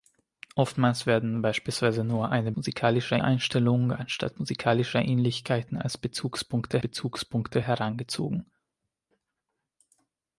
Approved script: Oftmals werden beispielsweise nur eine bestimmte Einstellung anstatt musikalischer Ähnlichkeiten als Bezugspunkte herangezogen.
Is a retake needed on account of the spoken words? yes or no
yes